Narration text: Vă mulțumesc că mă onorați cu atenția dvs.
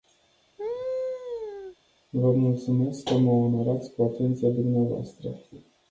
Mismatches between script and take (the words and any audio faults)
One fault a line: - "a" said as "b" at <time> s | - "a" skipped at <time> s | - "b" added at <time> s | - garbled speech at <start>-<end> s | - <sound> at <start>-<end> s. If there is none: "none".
- laugh at 0.6-1.8 s